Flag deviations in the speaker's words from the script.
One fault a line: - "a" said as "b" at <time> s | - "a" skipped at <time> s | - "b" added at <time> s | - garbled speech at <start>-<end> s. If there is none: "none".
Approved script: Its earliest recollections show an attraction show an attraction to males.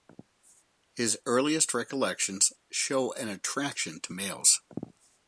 - "Its" said as "His" at 0.9 s
- "show an attraction" skipped at 4.0 s